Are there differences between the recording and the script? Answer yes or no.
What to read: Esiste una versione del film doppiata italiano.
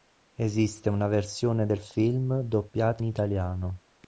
no